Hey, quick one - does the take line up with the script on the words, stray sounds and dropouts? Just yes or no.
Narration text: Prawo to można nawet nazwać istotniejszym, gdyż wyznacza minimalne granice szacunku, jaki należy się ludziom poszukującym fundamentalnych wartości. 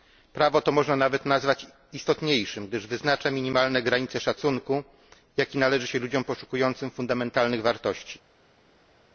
yes